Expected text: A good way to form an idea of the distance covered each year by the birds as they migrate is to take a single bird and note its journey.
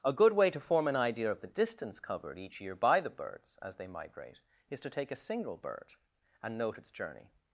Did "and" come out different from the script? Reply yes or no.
no